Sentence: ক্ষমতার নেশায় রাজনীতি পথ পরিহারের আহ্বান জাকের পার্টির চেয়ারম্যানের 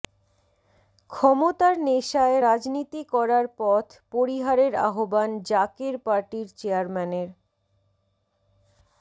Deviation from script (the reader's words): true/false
true